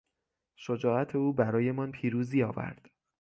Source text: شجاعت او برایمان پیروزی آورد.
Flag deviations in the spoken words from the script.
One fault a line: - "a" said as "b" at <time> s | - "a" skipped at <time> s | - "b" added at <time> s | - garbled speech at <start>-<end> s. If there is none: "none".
none